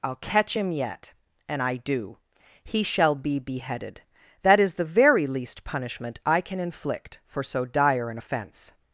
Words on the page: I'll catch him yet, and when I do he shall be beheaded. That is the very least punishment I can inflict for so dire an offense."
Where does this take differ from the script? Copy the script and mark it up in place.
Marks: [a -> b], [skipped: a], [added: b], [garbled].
I'll catch him yet, and [skipped: when] I do he shall be beheaded. That is the very least punishment I can inflict for so dire an offense."